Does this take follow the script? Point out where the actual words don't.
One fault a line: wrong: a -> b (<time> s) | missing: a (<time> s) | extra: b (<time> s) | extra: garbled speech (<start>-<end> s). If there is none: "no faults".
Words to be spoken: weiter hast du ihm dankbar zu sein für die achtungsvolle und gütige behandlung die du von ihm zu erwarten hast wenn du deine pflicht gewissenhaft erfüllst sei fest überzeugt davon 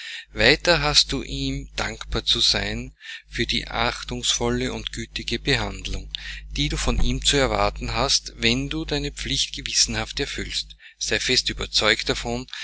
no faults